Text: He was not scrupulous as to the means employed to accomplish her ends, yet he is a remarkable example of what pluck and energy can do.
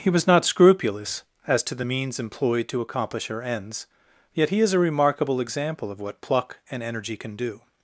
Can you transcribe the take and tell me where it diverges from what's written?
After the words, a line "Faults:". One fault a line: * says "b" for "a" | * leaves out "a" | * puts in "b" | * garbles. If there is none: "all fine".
He was not scrupulous as to the means employed to accomplish her ends, yet he is a remarkable example of what pluck and energy can do.
Faults:
all fine